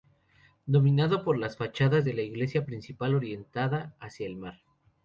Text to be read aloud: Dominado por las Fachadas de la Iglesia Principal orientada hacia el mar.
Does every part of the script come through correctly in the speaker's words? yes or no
yes